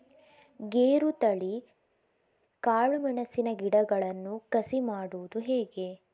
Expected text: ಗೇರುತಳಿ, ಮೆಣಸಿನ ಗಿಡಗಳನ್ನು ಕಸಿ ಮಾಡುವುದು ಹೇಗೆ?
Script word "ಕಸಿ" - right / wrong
right